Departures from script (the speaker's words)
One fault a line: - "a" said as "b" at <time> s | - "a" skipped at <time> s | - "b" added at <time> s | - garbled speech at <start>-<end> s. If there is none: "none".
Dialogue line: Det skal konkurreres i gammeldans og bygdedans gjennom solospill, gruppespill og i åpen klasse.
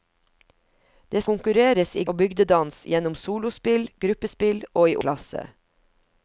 - "skal" skipped at 1.2 s
- "gammeldans" skipped at 2.0 s
- "åpen" skipped at 5.0 s